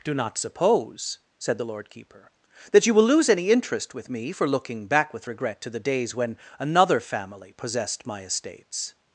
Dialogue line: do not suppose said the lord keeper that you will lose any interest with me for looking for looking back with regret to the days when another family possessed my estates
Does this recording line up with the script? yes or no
no